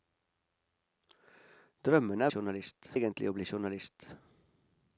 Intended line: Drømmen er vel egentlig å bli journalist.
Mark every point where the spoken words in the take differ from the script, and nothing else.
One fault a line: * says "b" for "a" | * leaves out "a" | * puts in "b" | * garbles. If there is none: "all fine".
* says "journalist" for "vel"